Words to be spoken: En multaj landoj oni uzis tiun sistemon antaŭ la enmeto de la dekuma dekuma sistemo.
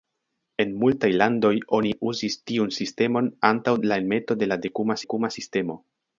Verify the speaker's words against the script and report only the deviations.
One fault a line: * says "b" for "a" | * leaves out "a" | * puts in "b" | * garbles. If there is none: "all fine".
all fine